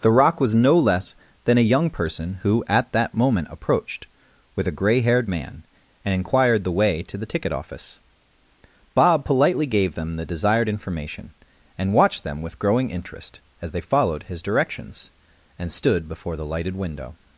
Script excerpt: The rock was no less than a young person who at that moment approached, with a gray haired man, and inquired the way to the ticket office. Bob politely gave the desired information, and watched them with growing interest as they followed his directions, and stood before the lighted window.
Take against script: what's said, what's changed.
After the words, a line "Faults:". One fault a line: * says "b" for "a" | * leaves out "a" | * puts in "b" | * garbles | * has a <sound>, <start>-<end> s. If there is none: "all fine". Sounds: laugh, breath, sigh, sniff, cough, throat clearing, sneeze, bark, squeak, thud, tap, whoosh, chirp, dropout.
The rock was no less than a young person who at that moment approached, with a gray haired man, and inquired the way to the ticket office. Bob politely gave them the desired information, and watched them with growing interest as they followed his directions, and stood before the lighted window.
Faults:
* puts in "them"